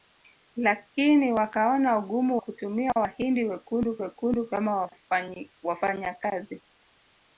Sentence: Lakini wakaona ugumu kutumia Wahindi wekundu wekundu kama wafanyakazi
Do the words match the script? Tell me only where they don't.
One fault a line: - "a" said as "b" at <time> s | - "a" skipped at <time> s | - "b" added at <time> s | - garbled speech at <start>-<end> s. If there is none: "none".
none